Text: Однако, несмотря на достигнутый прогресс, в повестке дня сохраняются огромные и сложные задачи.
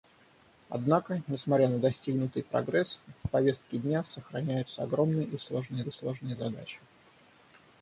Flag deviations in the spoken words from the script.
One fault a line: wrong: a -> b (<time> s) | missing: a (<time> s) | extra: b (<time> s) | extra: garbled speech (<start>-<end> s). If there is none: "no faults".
extra: и сложные (5.8 s)